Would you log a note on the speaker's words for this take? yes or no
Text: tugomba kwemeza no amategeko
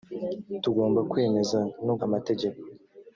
no